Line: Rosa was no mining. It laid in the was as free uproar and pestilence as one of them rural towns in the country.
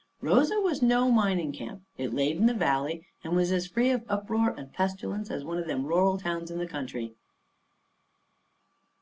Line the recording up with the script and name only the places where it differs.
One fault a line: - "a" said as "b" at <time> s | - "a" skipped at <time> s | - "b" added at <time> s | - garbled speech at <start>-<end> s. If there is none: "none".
- "camp" added at 1.5 s
- "valley and" added at 2.5 s
- "of" added at 3.9 s